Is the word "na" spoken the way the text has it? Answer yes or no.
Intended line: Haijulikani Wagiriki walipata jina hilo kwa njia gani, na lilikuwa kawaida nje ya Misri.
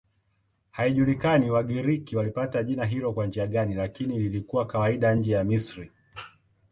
no